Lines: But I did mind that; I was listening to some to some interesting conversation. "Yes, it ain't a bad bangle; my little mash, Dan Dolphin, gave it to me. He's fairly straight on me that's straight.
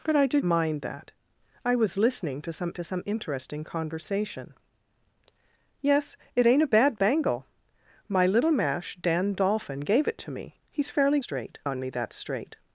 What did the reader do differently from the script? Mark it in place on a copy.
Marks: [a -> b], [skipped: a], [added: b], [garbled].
But I did mind that; I was listening to some to some interesting conversation. "Yes, it ain't a bad bangle; my little mash, Dan Dolphin, gave it to me. He's fairly straight on me that's straight.